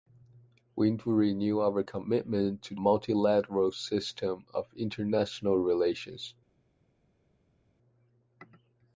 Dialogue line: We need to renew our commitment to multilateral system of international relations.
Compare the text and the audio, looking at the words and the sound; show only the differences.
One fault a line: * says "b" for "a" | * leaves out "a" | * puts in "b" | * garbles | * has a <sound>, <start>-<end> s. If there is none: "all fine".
all fine